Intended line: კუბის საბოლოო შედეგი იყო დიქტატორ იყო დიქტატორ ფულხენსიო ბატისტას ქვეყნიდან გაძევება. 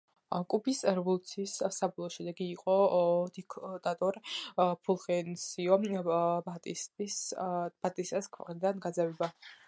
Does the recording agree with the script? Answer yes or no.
no